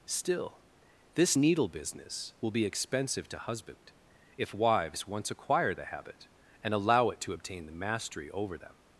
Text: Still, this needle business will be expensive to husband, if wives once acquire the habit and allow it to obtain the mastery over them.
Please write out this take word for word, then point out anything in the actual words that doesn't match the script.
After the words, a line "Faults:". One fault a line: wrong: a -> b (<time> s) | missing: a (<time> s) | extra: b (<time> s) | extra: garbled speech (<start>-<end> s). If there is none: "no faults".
Still, this needle business will be expensive to husband, if wives once acquire the habit and allow it to obtain the mastery over them.
Faults:
no faults